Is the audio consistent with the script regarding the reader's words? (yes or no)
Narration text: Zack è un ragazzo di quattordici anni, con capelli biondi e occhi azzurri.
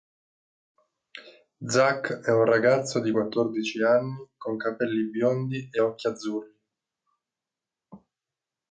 yes